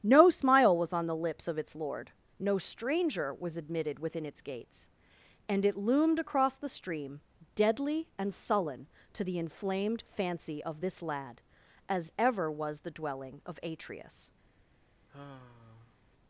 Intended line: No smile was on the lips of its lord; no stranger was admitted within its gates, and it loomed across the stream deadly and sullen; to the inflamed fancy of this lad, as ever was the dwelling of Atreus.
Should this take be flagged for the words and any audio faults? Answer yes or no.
yes